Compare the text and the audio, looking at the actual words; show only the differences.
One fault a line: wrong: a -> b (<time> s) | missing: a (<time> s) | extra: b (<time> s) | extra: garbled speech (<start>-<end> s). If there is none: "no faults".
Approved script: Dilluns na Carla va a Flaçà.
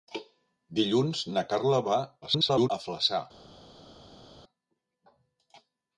extra: garbled speech (2.2-2.7 s)